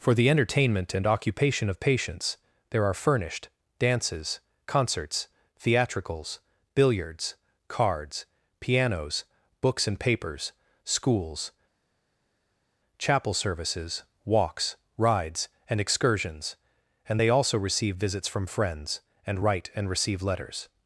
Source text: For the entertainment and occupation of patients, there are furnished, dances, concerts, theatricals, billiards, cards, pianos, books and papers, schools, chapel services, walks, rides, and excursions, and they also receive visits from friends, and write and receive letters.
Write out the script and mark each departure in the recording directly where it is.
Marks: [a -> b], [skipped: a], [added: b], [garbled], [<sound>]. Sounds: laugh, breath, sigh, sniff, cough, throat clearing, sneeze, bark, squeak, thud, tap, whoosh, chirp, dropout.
For the entertainment and occupation of patients, there are furnished, dances, concerts, theatricals, billiards, cards, pianos, books and papers, schools, chapel services, walks, rides, and excursions, and they also receive visits from friends, and write and receive letters.